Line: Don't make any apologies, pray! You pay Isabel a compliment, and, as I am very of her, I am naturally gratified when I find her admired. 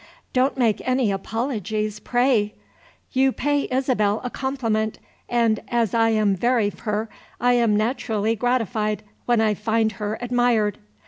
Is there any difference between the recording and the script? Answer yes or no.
no